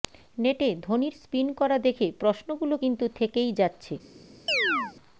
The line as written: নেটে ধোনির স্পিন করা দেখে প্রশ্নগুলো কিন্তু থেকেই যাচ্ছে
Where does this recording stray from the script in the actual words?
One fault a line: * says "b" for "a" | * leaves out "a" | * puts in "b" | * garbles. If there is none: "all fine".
all fine